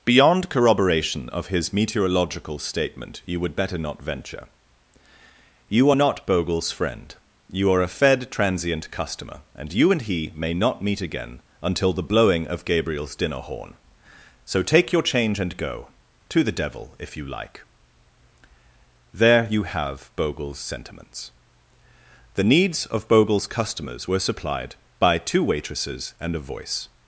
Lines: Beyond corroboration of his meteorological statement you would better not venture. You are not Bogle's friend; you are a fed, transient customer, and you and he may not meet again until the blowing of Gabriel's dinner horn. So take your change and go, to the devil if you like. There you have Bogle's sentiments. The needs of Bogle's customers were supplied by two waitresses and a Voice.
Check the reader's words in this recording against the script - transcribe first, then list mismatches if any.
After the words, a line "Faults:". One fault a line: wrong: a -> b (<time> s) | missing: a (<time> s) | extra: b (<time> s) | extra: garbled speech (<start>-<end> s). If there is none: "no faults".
Beyond corroboration of his meteorological statement you would better not venture. You are not Bogle's friend; you are a fed, transient customer, and you and he may not meet again until the blowing of Gabriel's dinner horn. So take your change and go, to the devil if you like. There you have Bogle's sentiments. The needs of Bogle's customers were supplied by two waitresses and a Voice.
Faults:
no faults